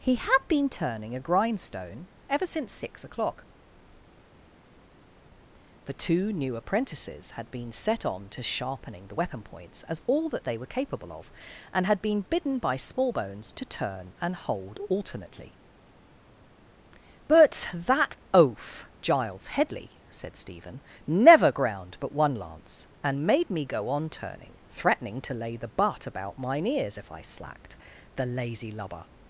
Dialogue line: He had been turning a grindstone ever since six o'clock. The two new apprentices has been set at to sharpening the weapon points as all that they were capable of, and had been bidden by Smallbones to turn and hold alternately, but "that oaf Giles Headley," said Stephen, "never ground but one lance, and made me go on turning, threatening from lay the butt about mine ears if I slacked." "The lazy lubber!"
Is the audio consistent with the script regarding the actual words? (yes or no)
no